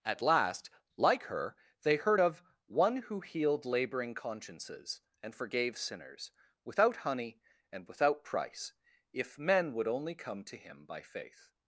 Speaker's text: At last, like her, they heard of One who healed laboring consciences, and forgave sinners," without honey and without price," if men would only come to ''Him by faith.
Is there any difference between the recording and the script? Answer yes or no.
no